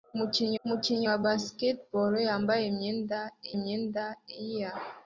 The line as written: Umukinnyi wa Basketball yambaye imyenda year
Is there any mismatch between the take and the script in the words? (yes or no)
yes